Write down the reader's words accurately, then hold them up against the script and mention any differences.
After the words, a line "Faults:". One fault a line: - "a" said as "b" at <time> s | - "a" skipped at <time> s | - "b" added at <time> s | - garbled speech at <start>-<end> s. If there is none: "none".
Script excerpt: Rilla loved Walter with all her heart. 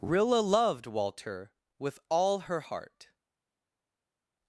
Rilla loved Walter with all her heart.
Faults:
none